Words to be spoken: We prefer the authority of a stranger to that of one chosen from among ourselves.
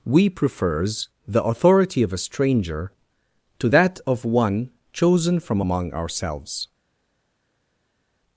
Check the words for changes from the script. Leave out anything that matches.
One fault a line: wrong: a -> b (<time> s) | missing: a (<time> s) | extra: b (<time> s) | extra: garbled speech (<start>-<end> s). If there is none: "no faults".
wrong: prefer -> prefers (0.3 s)